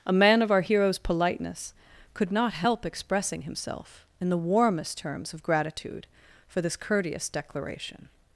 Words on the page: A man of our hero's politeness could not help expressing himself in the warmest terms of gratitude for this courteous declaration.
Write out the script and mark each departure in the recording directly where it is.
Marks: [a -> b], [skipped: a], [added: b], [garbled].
A man of our hero's politeness could not help expressing himself in the warmest terms of gratitude for this courteous declaration.